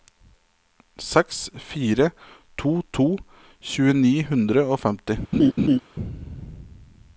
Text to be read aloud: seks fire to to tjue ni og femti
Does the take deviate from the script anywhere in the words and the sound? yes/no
yes